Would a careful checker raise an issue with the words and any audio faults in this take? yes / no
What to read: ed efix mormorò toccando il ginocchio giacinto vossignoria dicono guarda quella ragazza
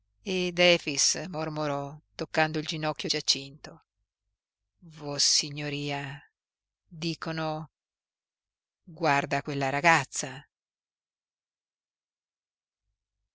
no